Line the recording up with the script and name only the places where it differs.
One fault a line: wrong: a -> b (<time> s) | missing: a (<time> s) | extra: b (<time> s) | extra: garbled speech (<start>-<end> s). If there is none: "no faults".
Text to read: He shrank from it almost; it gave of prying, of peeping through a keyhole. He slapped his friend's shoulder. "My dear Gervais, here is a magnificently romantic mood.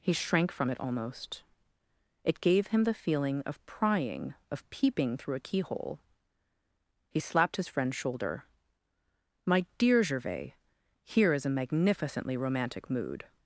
extra: him the feeling (2.7 s)